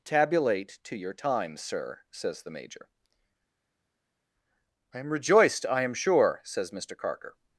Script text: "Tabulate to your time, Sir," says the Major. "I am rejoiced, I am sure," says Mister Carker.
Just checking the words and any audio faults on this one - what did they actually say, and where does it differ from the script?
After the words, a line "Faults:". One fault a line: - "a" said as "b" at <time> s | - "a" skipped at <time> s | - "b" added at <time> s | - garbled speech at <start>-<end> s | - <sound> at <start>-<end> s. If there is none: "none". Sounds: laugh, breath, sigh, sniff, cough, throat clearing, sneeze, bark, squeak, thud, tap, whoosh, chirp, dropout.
"Tabulate to your time, Sir," says the Major. "I am rejoiced, I am sure," says Mister Carker.
Faults:
none